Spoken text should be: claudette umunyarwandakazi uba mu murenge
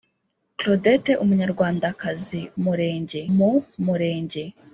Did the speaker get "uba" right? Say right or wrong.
wrong